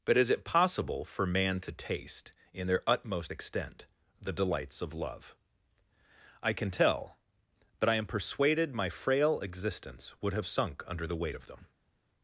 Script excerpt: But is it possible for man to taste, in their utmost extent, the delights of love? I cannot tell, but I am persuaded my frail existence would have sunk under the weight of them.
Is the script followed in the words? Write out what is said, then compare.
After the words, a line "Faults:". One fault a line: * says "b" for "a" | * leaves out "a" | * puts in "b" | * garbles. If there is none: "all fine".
But is it possible for man to taste, in their utmost extent, the delights of love? I can tell, but I am persuaded my frail existence would have sunk under the weight of them.
Faults:
* says "can" for "cannot"